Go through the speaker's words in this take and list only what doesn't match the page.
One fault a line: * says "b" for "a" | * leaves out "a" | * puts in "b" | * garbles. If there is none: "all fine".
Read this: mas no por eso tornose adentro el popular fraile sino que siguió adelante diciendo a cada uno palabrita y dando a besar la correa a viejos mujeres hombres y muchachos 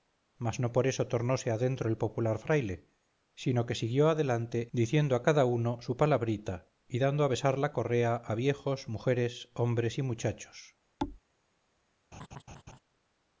* puts in "su"